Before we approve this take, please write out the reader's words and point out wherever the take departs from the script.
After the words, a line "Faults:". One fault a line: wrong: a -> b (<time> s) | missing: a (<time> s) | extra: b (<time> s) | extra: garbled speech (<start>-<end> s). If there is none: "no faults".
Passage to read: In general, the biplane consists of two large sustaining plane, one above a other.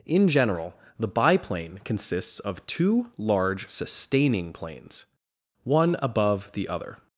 In general, the biplane consists of two large sustaining planes, one above the other.
Faults:
wrong: plane -> planes (4.5 s)
wrong: a -> the (6.5 s)